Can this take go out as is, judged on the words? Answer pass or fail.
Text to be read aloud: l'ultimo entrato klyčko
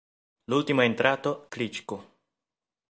pass